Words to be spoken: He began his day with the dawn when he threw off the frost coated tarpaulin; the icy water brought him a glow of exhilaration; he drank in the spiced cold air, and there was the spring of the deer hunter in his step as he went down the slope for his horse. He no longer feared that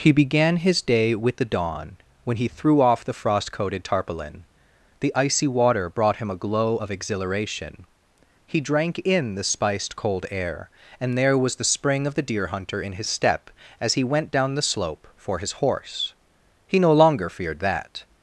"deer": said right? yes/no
yes